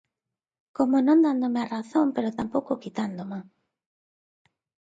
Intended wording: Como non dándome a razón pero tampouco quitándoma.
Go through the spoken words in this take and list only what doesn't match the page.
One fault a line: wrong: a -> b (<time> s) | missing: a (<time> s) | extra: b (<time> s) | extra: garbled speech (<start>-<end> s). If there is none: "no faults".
no faults